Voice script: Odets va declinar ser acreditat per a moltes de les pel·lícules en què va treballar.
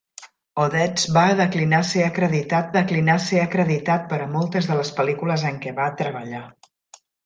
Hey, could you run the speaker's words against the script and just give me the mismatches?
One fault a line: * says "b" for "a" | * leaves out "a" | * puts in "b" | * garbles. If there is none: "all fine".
* puts in "declinar ser acreditat"